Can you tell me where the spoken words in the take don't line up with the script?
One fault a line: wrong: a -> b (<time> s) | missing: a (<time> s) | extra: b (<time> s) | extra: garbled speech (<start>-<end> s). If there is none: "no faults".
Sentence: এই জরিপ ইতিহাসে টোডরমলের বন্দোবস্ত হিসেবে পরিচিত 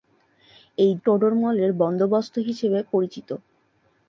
missing: জরিপ ইতিহাসে (0.9 s)